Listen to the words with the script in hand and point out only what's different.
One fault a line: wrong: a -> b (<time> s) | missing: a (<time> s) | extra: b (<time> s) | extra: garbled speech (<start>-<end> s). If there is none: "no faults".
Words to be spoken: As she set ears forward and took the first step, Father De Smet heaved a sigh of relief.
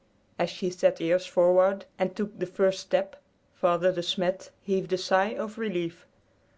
no faults